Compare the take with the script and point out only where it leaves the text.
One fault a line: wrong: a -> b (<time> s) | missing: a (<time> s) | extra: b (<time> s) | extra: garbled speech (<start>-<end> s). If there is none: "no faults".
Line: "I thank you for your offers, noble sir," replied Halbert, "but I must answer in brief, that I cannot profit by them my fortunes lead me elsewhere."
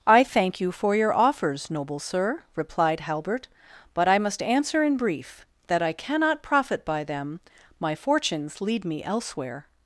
no faults